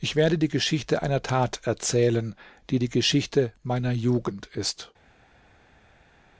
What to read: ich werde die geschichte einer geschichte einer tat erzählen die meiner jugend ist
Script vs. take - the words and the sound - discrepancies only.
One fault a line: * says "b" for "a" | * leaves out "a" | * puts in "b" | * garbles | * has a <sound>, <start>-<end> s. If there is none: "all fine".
* leaves out "geschichte einer"
* puts in "die geschichte"